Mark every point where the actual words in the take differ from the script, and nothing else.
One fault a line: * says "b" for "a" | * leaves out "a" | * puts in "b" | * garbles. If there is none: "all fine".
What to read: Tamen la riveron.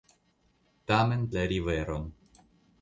all fine